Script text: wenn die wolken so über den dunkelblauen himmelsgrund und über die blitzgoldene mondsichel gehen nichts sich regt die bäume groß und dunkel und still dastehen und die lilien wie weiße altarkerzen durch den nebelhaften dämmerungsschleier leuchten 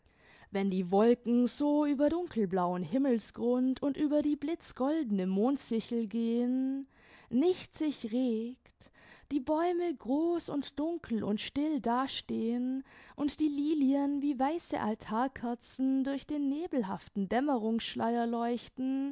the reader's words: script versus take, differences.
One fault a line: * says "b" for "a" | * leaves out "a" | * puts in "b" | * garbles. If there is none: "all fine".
* leaves out "den"